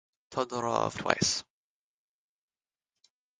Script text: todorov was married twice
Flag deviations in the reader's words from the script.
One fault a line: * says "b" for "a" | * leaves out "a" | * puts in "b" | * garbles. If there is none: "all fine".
* leaves out "was married"